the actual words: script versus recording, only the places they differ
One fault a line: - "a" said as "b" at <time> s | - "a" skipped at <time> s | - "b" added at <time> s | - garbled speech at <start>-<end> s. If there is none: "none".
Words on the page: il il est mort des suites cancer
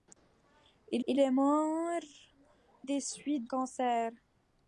none